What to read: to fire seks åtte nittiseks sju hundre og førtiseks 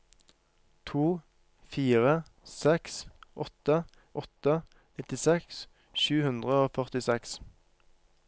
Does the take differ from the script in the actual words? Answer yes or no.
yes